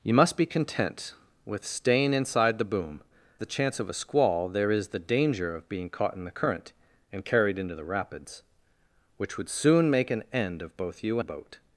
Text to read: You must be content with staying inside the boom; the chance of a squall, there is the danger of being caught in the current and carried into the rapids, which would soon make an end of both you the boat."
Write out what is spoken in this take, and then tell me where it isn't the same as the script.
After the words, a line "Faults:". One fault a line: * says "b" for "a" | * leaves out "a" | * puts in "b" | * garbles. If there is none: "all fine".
You must be content with staying inside the boom; the chance of a squall, there is the danger of being caught in the current and carried into the rapids, which would soon make an end of both you the boat."
Faults:
all fine